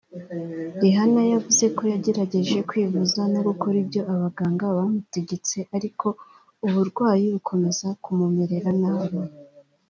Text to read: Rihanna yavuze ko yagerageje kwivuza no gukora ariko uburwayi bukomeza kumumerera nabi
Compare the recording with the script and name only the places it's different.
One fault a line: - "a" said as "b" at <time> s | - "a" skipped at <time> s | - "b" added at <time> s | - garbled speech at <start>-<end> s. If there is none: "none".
- "ibyo abaganga bamutegetse" added at 3.8 s